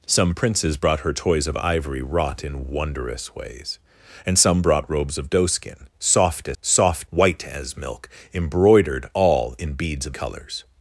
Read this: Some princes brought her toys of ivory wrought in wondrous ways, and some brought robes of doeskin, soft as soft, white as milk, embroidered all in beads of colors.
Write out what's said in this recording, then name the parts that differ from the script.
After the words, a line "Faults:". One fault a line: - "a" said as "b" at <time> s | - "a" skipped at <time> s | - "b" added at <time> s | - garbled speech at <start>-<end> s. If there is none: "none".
Some princes brought her toys of ivory wrought in wondrous ways, and some brought robes of doeskin, soft as soft, white as milk, embroidered all in beads of colors.
Faults:
none